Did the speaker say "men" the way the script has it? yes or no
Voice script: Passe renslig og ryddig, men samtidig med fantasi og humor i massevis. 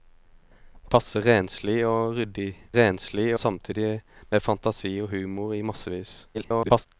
no